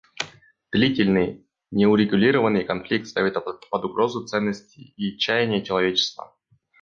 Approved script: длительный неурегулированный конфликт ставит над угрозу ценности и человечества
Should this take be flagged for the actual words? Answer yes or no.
yes